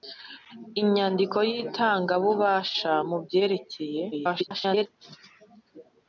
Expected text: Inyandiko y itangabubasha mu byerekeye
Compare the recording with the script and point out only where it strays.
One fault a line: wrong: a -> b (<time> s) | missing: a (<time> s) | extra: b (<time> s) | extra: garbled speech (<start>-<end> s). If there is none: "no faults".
extra: garbled speech (4.1-4.9 s)